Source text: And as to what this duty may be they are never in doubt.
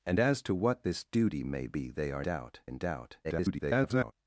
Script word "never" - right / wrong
wrong